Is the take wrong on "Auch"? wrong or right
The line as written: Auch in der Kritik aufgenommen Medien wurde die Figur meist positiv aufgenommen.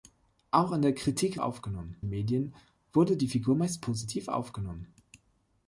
right